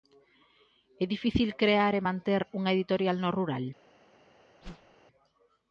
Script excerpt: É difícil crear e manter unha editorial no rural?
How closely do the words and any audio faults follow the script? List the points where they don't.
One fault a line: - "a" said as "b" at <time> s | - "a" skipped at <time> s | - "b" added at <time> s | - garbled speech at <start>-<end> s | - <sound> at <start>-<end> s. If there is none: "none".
- whoosh at 4.6-5.0 s